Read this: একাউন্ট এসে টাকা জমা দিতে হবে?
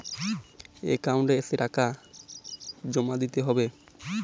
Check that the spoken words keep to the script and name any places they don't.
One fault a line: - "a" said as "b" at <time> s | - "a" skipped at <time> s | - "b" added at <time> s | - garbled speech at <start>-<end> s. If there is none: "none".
none